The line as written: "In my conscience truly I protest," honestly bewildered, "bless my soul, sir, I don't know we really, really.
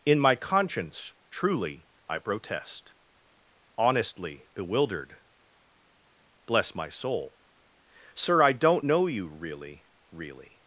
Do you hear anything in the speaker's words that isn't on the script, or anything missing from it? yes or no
yes